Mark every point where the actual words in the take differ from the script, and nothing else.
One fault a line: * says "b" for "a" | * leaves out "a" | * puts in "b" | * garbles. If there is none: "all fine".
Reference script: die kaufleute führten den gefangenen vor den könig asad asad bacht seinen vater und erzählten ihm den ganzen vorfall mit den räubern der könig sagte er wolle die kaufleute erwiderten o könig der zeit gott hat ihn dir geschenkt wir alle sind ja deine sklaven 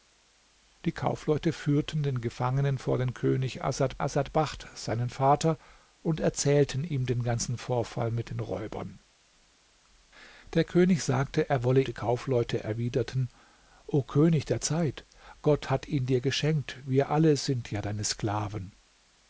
all fine